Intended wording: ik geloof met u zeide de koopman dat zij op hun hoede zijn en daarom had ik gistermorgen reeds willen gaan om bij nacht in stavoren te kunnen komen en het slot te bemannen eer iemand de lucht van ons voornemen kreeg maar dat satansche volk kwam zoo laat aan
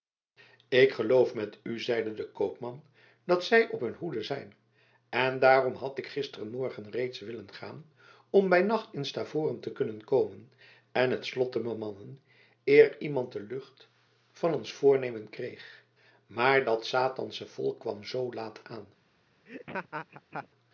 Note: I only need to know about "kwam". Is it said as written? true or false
true